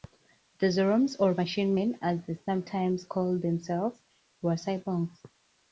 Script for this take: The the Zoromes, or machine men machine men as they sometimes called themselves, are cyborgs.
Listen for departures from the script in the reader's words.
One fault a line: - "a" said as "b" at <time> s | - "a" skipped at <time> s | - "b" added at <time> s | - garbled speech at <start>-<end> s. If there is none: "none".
- "the" skipped at 0.7 s
- "machine men" skipped at 2.0 s
- "are" said as "were" at 4.4 s